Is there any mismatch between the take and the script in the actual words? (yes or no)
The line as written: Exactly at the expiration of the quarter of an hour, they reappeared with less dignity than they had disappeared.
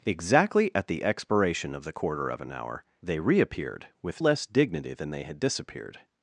no